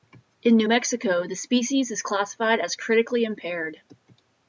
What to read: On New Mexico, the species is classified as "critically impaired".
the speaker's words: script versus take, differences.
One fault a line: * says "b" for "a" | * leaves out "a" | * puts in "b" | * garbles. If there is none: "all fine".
* says "In" for "On"